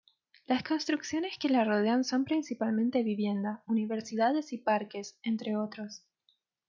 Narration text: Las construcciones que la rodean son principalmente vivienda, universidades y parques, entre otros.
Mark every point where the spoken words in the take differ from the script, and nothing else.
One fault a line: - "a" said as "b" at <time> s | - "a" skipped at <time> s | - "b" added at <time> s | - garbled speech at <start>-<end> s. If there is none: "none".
none